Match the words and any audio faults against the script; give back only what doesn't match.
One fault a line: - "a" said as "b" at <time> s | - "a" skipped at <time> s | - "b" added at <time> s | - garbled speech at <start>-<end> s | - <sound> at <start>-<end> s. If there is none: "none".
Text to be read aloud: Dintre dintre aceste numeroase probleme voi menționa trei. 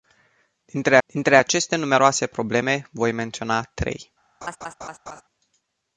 - laugh at 4.4-5.2 s